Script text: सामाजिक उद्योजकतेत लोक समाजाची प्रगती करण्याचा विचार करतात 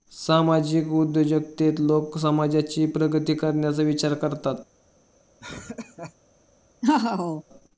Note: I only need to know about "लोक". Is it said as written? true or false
true